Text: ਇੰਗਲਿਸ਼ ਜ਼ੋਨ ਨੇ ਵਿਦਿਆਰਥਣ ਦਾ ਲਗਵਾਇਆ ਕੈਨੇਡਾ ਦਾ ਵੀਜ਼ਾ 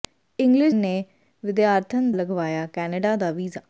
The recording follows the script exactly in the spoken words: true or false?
false